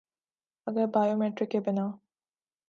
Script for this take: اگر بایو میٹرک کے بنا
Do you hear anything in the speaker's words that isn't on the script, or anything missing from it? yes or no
no